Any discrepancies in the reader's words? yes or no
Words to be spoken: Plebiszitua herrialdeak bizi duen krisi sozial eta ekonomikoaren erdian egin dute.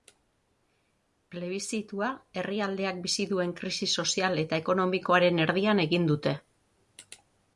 no